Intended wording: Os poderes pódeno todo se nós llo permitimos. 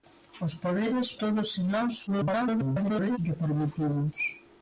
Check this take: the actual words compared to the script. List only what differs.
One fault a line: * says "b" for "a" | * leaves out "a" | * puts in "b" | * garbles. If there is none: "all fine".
* leaves out "pódeno"
* garbles